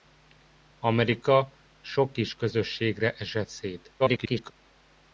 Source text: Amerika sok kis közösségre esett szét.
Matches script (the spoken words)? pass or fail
fail